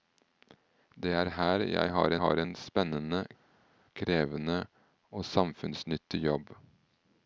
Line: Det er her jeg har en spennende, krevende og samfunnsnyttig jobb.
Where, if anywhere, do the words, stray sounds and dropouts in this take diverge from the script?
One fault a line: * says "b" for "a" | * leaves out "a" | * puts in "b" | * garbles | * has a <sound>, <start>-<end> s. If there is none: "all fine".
* puts in "har"